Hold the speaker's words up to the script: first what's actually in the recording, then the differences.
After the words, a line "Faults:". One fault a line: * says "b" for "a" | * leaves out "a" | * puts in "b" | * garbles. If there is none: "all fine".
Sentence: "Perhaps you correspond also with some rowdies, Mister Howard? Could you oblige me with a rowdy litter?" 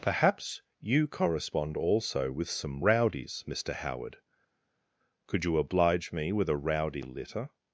"Perhaps you correspond also with some rowdies, Mister Howard? Could you oblige me with a rowdy litter?"
Faults:
all fine